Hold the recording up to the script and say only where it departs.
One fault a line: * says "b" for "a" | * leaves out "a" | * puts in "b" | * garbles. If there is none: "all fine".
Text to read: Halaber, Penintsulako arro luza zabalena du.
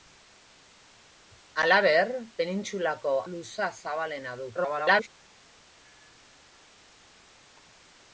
* leaves out "arro"
* garbles